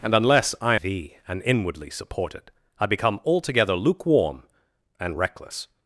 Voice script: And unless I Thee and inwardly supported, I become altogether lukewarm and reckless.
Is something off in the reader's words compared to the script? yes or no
no